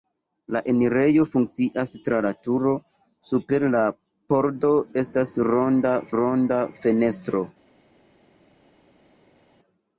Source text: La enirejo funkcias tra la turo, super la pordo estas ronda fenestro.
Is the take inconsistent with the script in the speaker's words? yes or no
yes